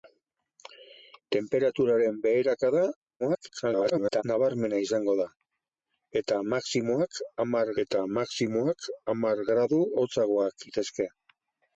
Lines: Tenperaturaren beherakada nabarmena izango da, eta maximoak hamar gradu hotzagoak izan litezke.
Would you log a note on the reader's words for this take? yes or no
yes